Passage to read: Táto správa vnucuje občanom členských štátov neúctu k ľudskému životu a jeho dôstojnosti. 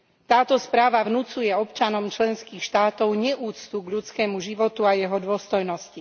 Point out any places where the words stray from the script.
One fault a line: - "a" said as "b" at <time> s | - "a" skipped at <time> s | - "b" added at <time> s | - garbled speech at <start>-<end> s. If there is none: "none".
none